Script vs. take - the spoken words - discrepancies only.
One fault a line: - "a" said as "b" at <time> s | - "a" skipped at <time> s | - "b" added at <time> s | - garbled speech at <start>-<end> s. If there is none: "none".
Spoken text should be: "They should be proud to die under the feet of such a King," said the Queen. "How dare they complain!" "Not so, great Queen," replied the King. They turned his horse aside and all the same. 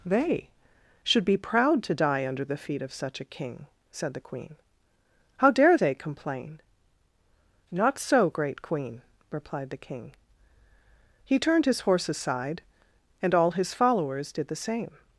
- "They" said as "He" at 11.3 s
- "his followers did" added at 13.5 s